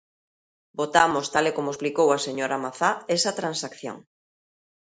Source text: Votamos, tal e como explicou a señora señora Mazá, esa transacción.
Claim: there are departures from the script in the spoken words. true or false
true